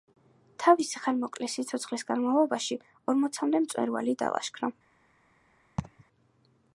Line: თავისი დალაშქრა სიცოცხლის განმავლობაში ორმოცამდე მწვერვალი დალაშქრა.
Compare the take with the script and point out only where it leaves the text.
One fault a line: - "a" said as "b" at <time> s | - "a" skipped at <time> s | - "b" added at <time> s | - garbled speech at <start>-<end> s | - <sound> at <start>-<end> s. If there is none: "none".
- "დალაშქრა" said as "ხანმოკლე" at 1.0 s
- laugh at 5.8-6.0 s